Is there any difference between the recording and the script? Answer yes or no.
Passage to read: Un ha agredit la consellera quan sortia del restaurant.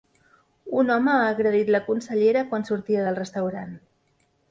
yes